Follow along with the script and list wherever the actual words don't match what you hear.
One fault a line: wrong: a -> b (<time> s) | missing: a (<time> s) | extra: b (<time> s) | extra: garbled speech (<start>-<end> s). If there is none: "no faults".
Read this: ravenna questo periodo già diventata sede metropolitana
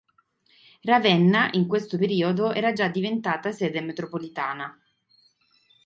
extra: in (1.5 s)
extra: era (2.5 s)